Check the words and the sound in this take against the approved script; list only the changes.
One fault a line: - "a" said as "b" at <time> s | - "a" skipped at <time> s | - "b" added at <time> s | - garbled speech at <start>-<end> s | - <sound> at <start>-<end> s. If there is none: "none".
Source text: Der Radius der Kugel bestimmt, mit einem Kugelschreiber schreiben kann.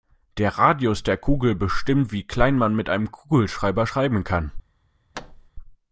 - "wie klein man" added at 2.1 s
- thud at 5.1-5.5 s